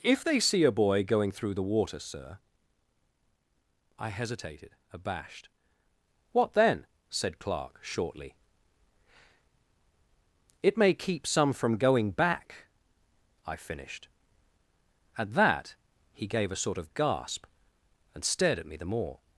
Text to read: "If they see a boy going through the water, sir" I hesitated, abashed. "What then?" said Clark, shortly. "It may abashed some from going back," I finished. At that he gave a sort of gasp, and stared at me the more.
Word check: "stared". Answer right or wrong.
right